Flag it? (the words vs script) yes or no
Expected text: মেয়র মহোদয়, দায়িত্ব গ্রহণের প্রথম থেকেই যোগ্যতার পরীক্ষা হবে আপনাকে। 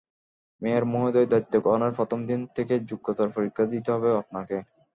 yes